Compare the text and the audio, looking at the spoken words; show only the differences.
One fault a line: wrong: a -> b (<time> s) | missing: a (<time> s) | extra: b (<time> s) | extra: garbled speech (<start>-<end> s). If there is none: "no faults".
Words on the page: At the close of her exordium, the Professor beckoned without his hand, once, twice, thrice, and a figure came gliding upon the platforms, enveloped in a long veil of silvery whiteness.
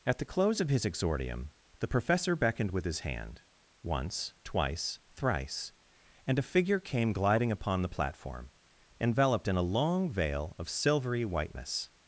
wrong: her -> his (0.7 s)
wrong: without -> with (2.7 s)
wrong: platforms -> platform (7.9 s)